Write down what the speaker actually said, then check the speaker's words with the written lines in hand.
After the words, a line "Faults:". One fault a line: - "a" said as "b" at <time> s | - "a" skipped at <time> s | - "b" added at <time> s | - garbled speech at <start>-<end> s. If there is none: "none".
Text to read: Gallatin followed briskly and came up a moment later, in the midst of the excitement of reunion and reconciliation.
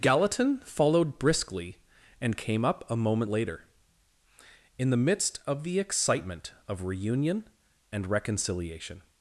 Gallatin followed briskly and came up a moment later, in the midst of the excitement of reunion and reconciliation.
Faults:
none